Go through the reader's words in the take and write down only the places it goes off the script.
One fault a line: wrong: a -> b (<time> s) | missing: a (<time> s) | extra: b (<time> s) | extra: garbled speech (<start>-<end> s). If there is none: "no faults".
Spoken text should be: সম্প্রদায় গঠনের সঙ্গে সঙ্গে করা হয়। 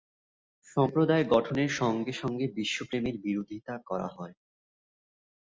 extra: বিশ্বপ্রেমের বিরোধিতা (2.6 s)